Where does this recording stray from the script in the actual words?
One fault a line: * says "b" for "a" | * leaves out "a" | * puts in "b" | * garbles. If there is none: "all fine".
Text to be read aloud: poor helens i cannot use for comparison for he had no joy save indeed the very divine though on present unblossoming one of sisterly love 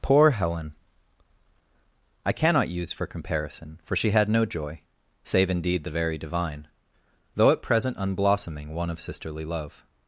* says "helen" for "helens"
* says "she" for "he"
* says "at" for "on"